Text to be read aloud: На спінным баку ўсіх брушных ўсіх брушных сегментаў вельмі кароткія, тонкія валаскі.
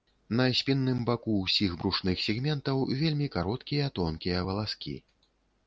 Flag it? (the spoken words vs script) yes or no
yes